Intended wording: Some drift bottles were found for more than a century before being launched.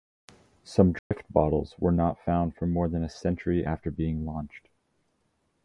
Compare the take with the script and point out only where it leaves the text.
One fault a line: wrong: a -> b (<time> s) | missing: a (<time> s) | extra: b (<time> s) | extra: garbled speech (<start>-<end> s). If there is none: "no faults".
extra: not (1.9 s)
wrong: before -> after (3.6 s)